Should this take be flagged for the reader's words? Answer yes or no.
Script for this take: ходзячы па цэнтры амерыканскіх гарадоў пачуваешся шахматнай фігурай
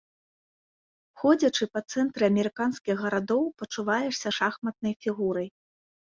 no